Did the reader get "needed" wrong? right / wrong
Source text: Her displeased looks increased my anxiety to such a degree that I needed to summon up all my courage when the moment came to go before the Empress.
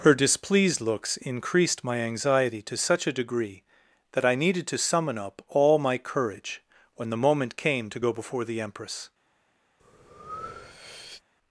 right